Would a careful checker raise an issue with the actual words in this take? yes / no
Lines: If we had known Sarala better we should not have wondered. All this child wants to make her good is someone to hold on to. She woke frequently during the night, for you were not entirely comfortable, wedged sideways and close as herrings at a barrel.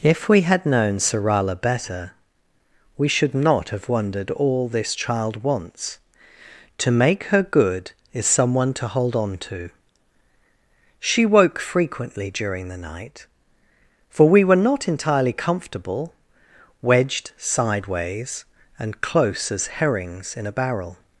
yes